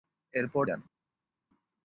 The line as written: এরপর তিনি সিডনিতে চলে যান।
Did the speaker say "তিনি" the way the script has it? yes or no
no